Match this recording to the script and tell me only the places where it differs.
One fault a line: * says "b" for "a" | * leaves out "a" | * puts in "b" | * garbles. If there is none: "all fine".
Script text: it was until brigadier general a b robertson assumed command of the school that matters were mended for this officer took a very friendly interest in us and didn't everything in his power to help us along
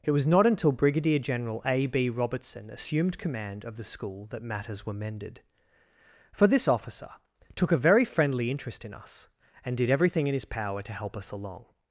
* puts in "not"
* says "did" for "didn't"